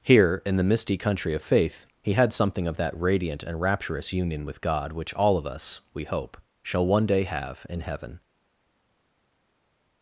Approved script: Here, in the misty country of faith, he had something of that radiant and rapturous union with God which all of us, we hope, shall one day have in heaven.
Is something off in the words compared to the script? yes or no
no